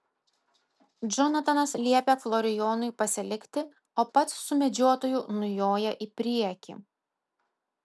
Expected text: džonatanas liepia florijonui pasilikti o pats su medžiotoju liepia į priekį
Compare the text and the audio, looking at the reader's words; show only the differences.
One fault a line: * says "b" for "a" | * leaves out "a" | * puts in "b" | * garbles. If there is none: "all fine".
* says "nujoja" for "liepia"